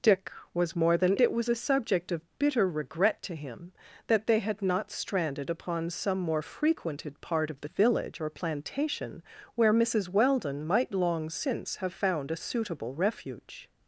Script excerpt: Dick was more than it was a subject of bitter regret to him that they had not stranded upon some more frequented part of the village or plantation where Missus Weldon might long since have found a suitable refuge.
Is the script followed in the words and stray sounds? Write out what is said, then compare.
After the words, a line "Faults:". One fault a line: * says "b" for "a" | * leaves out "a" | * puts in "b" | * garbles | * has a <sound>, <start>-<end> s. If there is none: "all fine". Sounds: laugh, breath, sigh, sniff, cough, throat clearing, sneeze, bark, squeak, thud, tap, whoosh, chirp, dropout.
Dick was more than it was a subject of bitter regret to him that they had not stranded upon some more frequented part of the village or plantation where Missus Weldon might long since have found a suitable refuge.
Faults:
all fine